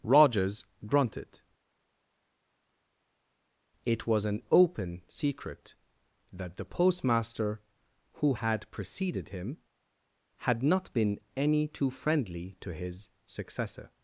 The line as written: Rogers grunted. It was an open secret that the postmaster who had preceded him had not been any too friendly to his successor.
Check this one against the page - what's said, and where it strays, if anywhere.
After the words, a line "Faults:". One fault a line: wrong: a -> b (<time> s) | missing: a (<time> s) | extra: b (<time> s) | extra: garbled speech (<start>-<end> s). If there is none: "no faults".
Rogers grunted. It was an open secret that the postmaster who had preceded him had not been any too friendly to his successor.
Faults:
no faults